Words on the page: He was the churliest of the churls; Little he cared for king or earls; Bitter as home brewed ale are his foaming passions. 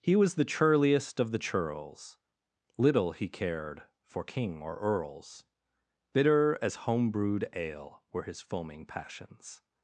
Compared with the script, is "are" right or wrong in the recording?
wrong